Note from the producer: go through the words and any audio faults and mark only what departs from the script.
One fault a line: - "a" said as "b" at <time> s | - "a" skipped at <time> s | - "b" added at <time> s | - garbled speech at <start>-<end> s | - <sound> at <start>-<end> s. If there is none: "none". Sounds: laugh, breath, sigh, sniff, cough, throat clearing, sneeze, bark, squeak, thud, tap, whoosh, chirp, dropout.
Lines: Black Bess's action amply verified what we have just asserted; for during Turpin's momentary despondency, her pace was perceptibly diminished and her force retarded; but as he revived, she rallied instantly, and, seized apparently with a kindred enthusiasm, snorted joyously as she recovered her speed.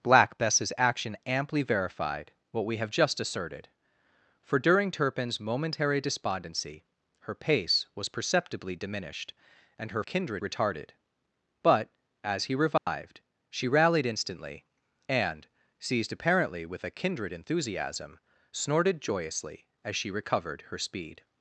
- "force" said as "kindred" at 10.0 s
- dropout at 12.8-12.9 s